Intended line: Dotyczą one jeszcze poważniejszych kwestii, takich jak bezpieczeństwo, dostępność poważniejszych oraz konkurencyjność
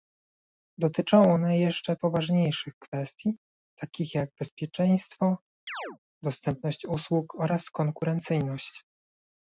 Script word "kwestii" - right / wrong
right